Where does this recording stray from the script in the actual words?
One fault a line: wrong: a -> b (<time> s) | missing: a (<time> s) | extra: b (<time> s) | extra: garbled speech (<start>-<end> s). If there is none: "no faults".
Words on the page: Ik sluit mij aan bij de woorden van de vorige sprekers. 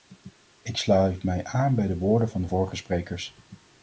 no faults